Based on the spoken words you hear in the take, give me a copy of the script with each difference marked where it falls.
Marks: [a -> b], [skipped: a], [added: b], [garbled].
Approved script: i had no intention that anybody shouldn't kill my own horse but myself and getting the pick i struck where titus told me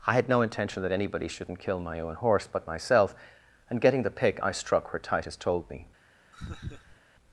i had no intention that anybody shouldn't kill my own horse but myself and getting the pick i struck where titus told me